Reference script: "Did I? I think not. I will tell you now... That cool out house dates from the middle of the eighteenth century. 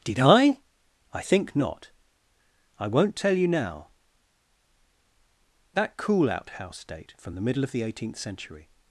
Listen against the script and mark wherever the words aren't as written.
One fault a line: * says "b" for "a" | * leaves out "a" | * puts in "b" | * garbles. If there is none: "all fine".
* says "won't" for "will"
* says "date" for "dates"